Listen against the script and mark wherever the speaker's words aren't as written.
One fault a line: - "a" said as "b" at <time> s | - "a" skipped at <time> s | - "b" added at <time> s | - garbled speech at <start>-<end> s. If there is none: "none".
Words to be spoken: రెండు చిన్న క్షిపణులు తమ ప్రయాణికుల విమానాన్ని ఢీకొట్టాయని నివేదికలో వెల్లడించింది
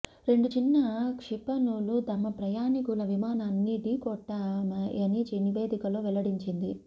none